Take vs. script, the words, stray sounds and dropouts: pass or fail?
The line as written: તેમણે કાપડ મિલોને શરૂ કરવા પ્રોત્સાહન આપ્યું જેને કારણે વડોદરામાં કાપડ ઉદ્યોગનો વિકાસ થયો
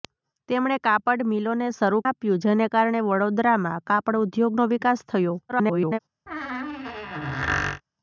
fail